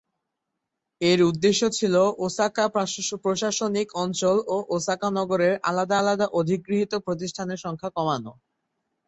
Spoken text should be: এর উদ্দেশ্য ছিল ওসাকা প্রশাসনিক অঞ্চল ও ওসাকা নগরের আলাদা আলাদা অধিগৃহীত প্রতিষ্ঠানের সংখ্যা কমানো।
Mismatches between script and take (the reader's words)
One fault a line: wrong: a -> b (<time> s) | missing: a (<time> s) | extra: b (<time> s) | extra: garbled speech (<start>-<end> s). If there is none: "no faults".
no faults